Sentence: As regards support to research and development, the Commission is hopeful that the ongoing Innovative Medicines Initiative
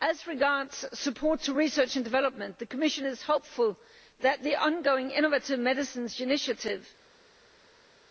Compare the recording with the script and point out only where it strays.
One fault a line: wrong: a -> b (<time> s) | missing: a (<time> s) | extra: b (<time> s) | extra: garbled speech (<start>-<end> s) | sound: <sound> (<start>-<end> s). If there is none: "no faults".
no faults